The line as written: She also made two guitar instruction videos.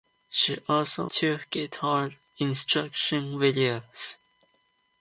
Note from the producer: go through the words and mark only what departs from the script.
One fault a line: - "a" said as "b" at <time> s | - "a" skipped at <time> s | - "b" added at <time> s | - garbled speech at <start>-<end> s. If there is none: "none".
- "made" skipped at 1.1 s